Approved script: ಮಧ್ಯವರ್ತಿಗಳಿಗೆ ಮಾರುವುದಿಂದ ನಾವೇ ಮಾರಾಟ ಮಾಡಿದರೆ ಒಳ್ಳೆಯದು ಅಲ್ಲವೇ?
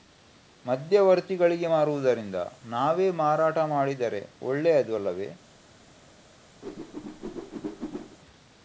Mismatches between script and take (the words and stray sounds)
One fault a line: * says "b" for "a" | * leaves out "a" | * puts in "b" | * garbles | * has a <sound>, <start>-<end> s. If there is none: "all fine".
* has a whoosh, 6.6-8.2 s